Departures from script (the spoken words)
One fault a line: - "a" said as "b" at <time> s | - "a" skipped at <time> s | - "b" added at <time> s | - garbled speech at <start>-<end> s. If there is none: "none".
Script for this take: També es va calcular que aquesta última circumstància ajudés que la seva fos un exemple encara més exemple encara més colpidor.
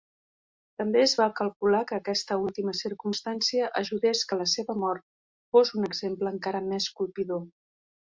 - "mort" added at 4.9 s
- "exemple encara més" skipped at 6.9 s